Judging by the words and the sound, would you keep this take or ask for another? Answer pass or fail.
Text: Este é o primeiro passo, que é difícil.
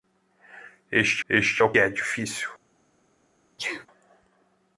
fail